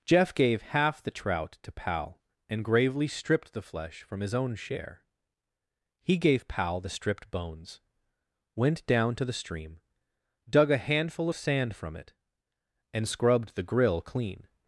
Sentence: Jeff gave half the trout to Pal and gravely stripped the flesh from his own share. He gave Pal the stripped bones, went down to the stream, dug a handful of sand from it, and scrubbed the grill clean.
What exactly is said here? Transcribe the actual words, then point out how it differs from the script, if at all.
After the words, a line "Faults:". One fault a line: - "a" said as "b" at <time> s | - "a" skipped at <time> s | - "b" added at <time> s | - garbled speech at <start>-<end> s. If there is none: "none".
Jeff gave half the trout to Pal and gravely stripped the flesh from his own share. He gave Pal the stripped bones, went down to the stream, dug a handful of sand from it, and scrubbed the grill clean.
Faults:
none